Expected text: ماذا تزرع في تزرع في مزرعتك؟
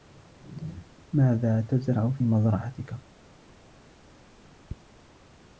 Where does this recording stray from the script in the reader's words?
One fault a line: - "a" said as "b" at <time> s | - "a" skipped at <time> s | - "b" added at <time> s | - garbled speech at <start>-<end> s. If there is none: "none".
- "تزرع في" skipped at 2.2 s